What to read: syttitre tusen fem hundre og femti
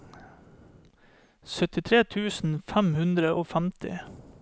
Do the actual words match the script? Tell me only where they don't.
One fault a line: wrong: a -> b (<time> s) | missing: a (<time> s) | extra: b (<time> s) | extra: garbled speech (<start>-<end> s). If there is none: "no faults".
no faults